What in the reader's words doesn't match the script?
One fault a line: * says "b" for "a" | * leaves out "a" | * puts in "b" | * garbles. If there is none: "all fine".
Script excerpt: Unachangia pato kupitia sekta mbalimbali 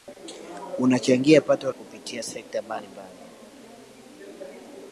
all fine